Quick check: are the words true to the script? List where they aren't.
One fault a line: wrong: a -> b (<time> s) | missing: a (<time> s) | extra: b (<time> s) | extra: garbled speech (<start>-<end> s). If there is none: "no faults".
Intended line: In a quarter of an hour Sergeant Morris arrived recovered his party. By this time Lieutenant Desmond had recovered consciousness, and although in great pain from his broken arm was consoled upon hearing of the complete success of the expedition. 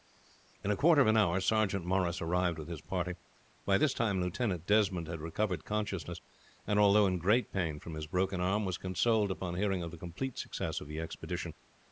wrong: recovered -> with (2.6 s)